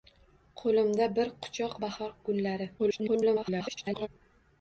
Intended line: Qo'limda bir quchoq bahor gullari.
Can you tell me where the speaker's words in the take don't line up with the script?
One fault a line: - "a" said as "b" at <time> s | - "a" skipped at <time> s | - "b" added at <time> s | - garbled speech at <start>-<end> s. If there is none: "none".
- garbled speech at 2.8-4.1 s